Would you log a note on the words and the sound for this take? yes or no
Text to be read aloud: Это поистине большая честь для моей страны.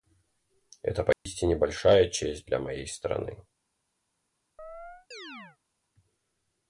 yes